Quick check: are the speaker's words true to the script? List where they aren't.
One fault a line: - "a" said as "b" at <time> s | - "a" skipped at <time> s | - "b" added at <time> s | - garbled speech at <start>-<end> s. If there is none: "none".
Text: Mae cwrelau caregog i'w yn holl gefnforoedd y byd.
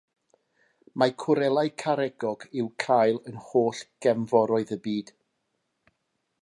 - "cael" added at 2.9 s